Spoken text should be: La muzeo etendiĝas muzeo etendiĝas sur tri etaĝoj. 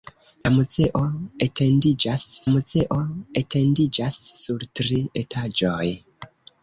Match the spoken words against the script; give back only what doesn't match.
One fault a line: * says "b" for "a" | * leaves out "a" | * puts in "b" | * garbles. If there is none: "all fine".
all fine